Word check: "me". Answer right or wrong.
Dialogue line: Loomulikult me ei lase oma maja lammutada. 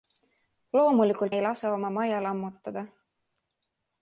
wrong